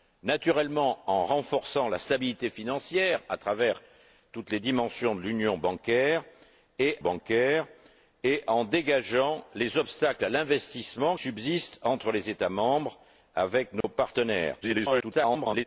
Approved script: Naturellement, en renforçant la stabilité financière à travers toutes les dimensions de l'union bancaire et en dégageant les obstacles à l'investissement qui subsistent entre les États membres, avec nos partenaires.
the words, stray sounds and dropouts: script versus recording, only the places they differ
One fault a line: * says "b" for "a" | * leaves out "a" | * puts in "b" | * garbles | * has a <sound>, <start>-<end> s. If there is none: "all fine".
* puts in "bancaire et"
* leaves out "qui"
* has a dropout, 13.8-13.8 s
* garbles